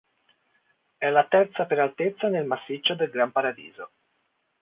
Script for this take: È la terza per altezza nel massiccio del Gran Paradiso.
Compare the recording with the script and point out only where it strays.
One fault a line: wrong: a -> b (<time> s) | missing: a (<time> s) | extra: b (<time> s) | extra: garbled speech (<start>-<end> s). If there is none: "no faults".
no faults